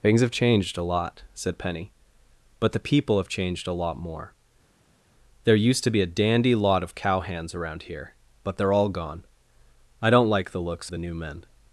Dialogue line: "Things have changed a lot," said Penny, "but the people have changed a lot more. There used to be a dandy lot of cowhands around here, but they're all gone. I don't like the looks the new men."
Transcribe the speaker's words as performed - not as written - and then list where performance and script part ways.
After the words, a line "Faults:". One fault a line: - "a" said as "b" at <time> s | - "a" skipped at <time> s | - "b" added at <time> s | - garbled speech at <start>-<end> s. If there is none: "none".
"Things have changed a lot," said Penny, "but the people have changed a lot more. There used to be a dandy lot of cowhands around here, but they're all gone. I don't like the looks the new men."
Faults:
none